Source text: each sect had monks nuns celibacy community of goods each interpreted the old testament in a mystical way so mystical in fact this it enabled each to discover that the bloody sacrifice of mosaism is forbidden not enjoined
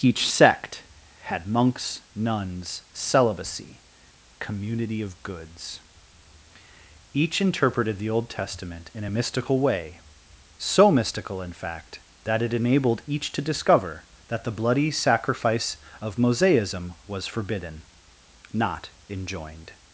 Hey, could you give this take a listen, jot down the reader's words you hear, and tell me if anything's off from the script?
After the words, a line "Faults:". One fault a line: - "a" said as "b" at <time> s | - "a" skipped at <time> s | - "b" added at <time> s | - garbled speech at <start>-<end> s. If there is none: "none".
each sect had monks nuns celibacy community of goods each interpreted the old testament in a mystical way so mystical in fact that it enabled each to discover that the bloody sacrifice of mosaism was forbidden not enjoined
Faults:
- "this" said as "that" at 12.2 s
- "is" said as "was" at 17.1 s